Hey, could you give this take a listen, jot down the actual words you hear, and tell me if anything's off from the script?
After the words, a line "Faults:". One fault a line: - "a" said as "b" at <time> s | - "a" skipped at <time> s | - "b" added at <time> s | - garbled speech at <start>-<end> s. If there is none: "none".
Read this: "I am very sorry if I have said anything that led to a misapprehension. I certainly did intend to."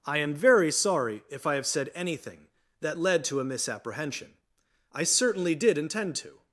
"I am very sorry if I have said anything that led to a misapprehension. I certainly did intend to."
Faults:
none